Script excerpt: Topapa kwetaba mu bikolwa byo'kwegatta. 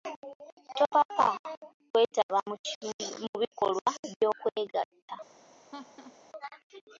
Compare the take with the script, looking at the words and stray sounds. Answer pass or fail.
fail